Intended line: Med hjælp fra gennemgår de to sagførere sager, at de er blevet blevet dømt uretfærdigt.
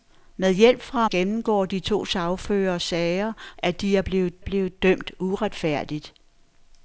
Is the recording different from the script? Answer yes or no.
no